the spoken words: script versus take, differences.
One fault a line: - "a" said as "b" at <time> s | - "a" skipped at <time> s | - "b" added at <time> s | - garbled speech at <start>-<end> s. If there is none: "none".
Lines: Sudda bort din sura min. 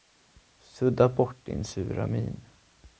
none